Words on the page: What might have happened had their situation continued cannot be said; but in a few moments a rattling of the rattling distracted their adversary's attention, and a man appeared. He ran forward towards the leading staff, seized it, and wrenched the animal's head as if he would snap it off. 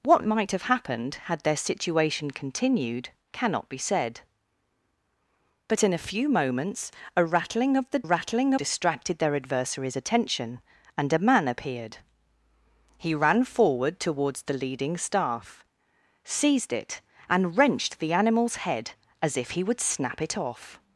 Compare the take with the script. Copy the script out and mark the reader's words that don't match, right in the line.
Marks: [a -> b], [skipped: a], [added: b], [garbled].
What might have happened had their situation continued cannot be said; but in a few moments a rattling of the rattling distracted their adversary's attention, and a man appeared. He ran forward towards the leading staff, seized it, and wrenched the animal's head as if he would snap it off.